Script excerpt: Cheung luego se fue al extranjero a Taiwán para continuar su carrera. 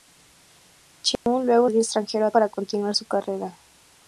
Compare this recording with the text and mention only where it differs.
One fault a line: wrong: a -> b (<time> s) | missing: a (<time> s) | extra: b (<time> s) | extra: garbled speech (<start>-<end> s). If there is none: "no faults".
missing: se fue (1.7 s)
missing: Taiwán (2.3 s)